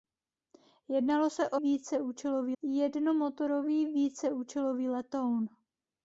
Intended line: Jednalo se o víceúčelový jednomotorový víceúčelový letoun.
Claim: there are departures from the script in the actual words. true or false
false